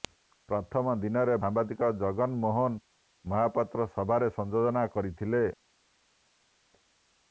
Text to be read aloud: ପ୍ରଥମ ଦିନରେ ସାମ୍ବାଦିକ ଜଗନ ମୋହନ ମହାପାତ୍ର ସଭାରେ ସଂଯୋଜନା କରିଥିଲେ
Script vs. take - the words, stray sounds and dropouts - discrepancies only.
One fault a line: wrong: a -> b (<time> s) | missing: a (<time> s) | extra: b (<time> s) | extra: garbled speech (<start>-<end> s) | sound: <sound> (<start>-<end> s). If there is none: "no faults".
no faults